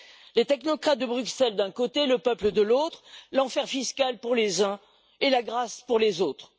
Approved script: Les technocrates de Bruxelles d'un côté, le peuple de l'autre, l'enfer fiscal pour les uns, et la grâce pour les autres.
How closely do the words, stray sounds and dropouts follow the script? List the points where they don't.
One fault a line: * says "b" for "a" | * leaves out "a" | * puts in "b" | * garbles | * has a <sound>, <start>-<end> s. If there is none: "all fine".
all fine